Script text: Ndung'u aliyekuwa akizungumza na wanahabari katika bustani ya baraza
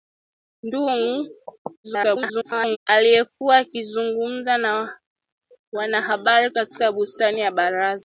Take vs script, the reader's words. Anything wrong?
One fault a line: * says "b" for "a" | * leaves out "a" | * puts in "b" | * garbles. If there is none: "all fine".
* garbles